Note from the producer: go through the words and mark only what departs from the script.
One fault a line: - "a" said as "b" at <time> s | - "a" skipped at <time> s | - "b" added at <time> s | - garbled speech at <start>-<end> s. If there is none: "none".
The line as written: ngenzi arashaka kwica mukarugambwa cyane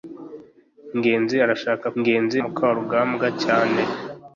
- "kwica" said as "ngenzi" at 2.0 s